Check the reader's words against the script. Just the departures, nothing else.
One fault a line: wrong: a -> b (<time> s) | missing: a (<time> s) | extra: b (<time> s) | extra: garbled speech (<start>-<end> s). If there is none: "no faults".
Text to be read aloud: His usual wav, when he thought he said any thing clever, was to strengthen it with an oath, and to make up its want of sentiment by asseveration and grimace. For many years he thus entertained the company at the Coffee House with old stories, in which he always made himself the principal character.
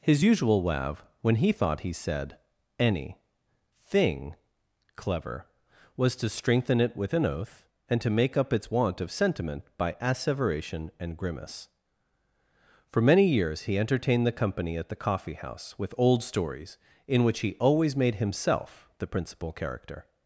missing: thus (13.8 s)